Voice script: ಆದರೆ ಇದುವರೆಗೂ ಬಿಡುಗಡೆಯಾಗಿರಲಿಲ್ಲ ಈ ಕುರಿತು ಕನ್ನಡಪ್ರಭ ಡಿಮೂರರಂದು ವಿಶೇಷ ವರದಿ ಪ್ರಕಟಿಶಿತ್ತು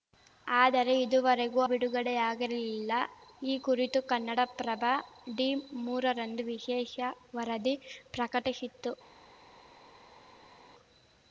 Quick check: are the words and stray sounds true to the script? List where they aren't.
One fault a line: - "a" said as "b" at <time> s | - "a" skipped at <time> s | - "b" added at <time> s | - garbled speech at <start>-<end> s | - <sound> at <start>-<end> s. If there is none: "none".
none